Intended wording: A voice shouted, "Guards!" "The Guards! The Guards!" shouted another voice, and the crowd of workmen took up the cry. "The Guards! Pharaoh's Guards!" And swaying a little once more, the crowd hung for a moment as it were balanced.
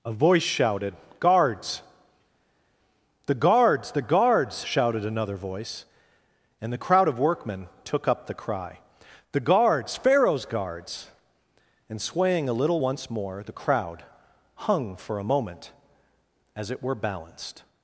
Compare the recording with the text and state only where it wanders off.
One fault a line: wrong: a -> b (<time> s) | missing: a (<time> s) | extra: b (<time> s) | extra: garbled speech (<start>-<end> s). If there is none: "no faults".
no faults